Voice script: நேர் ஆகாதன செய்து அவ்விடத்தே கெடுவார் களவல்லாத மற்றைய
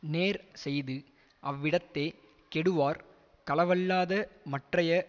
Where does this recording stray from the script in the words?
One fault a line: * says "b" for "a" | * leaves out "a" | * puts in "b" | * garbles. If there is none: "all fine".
* leaves out "ஆகாதன"